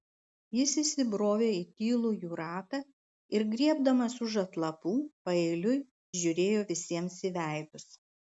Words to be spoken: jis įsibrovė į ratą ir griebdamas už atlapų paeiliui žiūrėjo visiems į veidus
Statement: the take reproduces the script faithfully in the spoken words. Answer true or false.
false